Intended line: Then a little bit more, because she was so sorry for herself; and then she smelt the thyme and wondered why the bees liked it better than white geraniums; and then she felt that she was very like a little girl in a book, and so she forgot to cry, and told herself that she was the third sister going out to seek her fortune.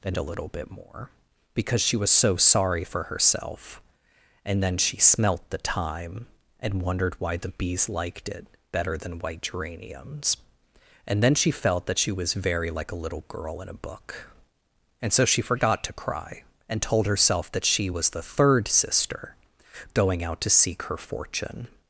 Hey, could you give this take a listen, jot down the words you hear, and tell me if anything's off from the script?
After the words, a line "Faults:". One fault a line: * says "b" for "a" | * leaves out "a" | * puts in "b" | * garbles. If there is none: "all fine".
Then a little bit more, because she was so sorry for herself; and then she smelt the thyme and wondered why the bees liked it better than white geraniums; and then she felt that she was very like a little girl in a book, and so she forgot to cry, and told herself that she was the third sister going out to seek her fortune.
Faults:
all fine